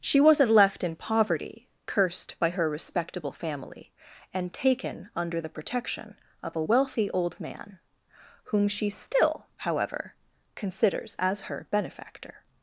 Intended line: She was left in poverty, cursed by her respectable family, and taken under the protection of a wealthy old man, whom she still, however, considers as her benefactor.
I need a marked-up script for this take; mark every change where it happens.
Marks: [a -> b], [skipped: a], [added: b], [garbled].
She [was -> wasn't] left in poverty, cursed by her respectable family, and taken under the protection of a wealthy old man, whom she still, however, considers as her benefactor.